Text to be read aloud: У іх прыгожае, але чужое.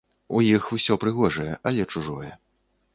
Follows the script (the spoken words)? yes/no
no